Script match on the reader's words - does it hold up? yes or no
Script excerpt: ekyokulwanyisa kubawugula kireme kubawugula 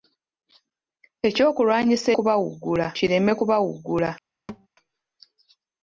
yes